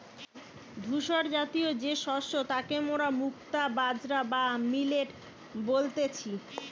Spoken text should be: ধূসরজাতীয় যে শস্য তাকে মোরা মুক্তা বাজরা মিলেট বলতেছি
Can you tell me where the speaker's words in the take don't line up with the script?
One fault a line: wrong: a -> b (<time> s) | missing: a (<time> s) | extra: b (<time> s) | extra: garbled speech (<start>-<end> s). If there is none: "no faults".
extra: বা (4.3 s)